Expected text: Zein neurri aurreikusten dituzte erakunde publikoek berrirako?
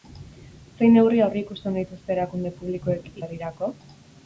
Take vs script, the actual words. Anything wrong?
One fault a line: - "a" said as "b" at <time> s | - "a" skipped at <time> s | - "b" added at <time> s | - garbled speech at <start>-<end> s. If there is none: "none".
none